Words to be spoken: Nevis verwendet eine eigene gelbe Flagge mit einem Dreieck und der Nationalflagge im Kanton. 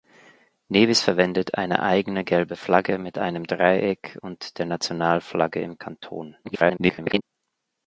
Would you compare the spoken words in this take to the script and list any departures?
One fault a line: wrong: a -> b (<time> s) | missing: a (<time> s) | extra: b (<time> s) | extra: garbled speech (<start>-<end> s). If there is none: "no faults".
extra: garbled speech (6.4-7.2 s)